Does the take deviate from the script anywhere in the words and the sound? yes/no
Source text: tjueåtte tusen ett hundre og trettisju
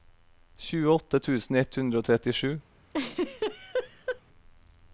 yes